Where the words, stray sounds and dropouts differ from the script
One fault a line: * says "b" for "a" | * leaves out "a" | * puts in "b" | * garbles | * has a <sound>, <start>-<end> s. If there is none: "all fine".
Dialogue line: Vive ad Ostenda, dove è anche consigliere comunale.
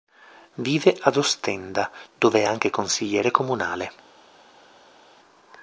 all fine